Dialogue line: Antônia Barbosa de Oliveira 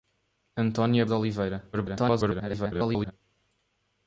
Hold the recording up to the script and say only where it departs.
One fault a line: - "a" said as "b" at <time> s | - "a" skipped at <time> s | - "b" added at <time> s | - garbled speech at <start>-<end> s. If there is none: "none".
- "Barbosa" skipped at 1.1 s
- garbled speech at 1.7-3.1 s